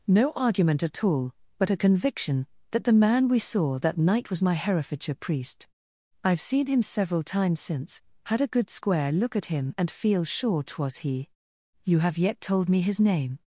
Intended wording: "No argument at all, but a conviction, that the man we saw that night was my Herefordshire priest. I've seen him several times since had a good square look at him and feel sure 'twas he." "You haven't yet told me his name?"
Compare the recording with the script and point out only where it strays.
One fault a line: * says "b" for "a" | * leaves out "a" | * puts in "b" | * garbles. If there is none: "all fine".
* says "have" for "haven't"